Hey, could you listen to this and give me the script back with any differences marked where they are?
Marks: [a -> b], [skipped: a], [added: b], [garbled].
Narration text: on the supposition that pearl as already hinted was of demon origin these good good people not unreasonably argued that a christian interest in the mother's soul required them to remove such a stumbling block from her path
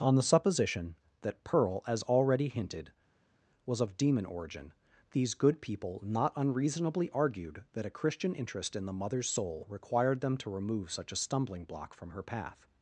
on the supposition that pearl as already hinted was of demon origin these good [skipped: good] people not unreasonably argued that a christian interest in the mother's soul required them to remove such a stumbling block from her path